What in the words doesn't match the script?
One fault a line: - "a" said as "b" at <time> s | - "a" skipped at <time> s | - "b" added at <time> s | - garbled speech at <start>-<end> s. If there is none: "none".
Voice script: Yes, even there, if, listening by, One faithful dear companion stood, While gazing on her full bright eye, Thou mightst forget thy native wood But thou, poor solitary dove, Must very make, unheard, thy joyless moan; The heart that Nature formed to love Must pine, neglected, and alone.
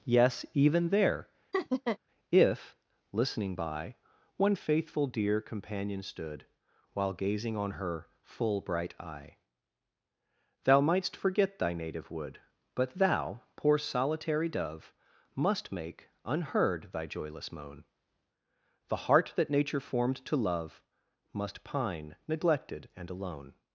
- "very" skipped at 15.7 s